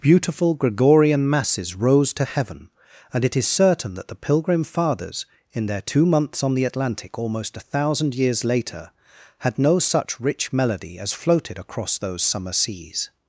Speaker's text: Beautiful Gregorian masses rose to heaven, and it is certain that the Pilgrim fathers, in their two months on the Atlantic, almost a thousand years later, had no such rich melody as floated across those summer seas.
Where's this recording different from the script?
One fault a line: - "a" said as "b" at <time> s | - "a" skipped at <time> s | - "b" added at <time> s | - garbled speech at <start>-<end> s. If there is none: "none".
none